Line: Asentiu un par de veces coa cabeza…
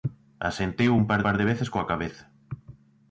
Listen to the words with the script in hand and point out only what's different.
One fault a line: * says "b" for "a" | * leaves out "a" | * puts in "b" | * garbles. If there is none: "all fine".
* puts in "par"